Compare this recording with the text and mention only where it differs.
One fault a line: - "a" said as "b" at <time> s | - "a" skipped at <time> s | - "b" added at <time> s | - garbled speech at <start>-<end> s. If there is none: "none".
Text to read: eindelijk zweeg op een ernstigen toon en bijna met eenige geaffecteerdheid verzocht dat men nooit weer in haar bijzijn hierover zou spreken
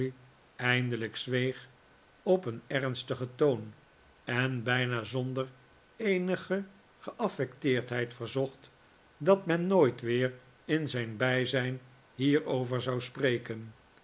- "met" said as "zonder" at 5.0 s
- "haar" said as "zijn" at 10.9 s